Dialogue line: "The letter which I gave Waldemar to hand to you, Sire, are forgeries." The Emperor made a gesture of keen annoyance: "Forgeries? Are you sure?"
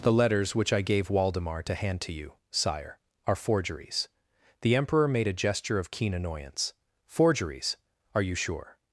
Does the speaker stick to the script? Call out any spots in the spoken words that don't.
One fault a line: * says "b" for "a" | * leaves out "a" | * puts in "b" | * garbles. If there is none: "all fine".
* says "letters" for "letter"